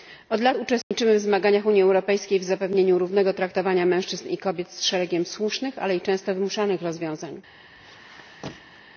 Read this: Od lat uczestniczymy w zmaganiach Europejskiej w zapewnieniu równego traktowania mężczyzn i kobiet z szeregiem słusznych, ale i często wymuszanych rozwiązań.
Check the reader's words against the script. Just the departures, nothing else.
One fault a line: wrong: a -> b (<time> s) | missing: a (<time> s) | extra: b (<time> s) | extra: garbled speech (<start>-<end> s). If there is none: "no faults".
extra: Unii (1.7 s)